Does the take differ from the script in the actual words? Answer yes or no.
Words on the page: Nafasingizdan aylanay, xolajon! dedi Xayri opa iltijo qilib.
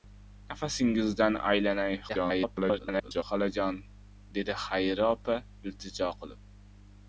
yes